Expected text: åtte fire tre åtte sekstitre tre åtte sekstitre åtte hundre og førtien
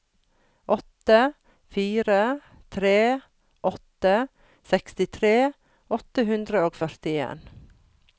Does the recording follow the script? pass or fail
fail